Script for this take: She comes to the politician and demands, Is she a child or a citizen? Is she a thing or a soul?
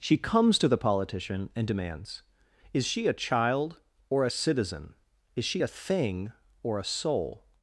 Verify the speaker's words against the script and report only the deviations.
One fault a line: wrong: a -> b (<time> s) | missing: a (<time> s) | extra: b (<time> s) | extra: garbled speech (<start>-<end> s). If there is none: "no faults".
no faults